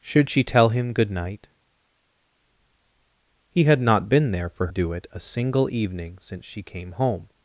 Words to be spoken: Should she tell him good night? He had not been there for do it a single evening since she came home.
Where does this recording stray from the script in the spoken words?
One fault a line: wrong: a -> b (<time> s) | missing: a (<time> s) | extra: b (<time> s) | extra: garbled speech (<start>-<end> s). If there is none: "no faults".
no faults